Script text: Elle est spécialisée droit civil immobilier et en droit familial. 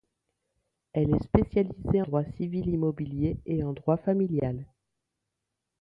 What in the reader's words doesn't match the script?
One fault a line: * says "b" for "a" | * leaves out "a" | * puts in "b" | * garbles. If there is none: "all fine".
all fine